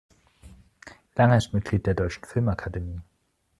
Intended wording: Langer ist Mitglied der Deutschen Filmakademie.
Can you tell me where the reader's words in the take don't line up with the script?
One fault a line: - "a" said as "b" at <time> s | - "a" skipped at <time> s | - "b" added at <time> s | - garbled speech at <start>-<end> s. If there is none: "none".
none